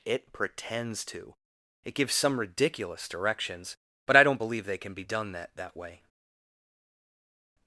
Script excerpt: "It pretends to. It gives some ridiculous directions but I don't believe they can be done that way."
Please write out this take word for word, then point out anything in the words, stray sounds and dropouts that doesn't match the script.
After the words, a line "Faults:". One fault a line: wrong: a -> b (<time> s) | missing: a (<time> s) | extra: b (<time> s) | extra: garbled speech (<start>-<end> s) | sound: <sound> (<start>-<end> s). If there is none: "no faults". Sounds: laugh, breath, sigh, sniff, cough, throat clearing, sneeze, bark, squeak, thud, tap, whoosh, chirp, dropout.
"It pretends to. It gives some ridiculous directions but I don't believe they can be done that that way."
Faults:
extra: that (5.6 s)